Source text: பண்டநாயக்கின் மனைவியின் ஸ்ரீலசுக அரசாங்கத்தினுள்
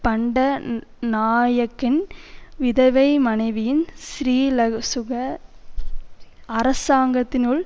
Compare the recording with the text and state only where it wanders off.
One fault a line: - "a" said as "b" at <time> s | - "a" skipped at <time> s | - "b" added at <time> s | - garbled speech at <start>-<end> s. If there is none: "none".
- "விதவை" added at 2.6 s